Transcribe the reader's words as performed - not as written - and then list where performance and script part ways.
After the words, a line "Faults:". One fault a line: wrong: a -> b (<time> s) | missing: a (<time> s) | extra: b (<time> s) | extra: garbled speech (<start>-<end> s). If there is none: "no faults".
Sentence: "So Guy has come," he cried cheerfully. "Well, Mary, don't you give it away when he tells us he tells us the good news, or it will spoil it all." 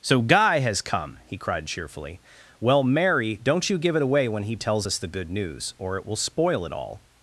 "So Guy has come," he cried cheerfully. "Well, Mary, don't you give it away when he tells us the good news, or it will spoil it all."
Faults:
missing: he tells us (5.0 s)